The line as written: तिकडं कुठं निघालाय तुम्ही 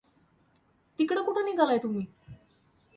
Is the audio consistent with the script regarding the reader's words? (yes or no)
yes